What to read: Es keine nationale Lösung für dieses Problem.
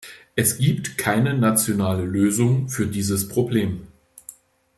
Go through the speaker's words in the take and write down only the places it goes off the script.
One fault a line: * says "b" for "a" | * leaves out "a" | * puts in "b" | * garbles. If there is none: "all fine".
* puts in "gibt"